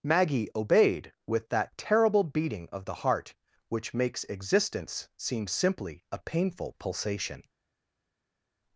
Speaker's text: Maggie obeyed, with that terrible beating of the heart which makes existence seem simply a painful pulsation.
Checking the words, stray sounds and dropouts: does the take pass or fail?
pass